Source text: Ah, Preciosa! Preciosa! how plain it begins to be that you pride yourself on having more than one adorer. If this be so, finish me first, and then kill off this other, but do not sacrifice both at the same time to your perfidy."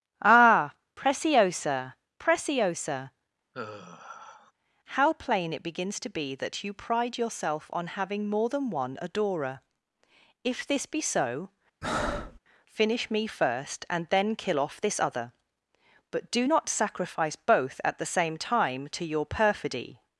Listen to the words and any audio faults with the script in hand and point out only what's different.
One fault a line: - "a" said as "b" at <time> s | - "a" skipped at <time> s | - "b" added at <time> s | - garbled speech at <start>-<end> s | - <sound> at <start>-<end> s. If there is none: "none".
- sigh at 3.5-4.5 s
- breath at 11.8-12.4 s